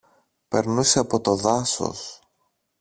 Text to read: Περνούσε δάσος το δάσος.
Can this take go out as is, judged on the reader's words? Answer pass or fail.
fail